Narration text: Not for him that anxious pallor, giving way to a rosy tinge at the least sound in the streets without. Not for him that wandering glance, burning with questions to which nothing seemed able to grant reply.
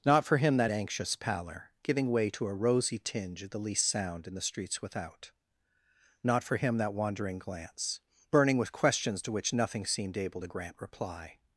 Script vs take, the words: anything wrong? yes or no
no